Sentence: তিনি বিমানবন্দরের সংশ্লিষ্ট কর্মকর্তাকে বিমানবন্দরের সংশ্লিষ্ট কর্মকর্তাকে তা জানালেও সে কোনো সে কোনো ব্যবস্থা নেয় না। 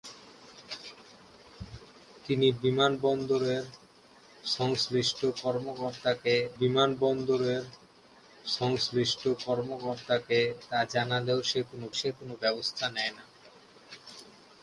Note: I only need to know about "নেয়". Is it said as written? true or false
true